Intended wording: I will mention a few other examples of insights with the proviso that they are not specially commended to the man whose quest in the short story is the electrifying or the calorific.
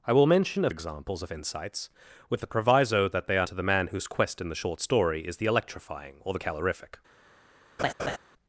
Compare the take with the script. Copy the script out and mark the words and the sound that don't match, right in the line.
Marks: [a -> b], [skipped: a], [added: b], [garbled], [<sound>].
I will mention a [skipped: few other] examples of insights with the proviso that they are [skipped: not specially commended] to the man whose quest in the short story is the electrifying or the calorific. [laugh]